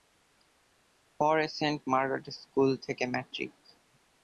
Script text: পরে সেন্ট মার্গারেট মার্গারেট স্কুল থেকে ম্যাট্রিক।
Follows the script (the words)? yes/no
no